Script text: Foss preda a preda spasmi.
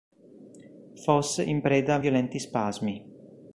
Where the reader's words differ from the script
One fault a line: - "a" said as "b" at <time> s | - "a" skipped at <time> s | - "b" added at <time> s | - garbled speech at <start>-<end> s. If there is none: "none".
- "in" added at 1.4 s
- "preda" said as "violenti" at 2.0 s